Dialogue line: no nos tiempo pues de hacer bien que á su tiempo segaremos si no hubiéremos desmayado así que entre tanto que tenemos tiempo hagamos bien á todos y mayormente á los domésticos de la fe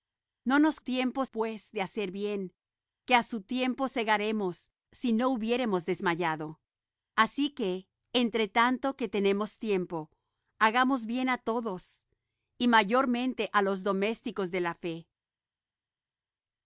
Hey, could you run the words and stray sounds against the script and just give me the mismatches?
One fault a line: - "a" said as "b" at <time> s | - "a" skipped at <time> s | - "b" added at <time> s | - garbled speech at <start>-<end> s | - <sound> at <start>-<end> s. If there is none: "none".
none